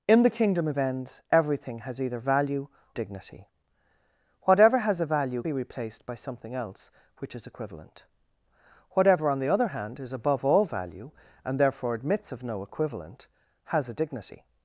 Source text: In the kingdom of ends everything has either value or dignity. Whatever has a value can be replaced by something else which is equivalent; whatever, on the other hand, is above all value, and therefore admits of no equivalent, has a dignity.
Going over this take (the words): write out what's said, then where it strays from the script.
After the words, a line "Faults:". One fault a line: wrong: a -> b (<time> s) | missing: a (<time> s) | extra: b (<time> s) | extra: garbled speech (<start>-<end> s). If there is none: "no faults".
In the kingdom of ends everything has either value dignity. Whatever has a value be replaced by something else which is equivalent; whatever, on the other hand, is above all value, and therefore admits of no equivalent, has a dignity.
Faults:
missing: or (2.7 s)
missing: can (5.4 s)